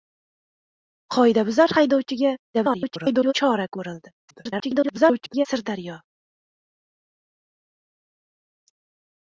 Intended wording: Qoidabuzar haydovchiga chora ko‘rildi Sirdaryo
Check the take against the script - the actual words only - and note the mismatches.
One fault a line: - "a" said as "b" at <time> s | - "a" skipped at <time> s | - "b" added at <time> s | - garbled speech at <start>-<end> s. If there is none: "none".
- garbled speech at 2.5-3.3 s
- garbled speech at 4.3-5.5 s